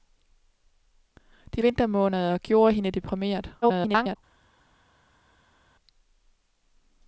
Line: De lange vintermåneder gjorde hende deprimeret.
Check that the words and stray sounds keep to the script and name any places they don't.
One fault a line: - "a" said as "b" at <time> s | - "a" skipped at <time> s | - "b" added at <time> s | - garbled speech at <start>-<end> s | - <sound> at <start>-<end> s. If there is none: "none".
- "lange" skipped at 1.6 s
- garbled speech at 3.6-4.2 s